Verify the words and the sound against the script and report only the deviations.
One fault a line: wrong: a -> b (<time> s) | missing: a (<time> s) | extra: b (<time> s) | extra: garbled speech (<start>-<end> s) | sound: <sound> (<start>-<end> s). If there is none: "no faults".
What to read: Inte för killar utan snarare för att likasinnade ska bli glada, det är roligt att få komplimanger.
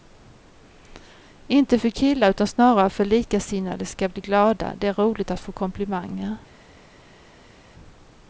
no faults